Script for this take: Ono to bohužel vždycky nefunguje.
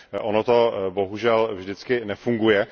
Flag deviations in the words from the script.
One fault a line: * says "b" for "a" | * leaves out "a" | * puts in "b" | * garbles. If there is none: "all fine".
all fine